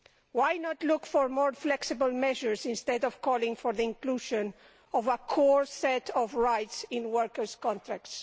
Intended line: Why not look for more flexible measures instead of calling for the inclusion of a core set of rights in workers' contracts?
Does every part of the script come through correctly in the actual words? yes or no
yes